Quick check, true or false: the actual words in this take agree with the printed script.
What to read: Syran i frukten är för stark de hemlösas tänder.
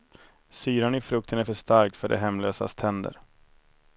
false